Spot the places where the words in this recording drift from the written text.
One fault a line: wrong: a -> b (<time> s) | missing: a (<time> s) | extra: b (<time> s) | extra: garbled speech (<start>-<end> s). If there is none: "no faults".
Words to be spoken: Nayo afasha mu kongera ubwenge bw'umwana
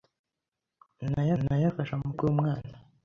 extra: nayo (1.4 s)
missing: kongera ubwenge (2.1 s)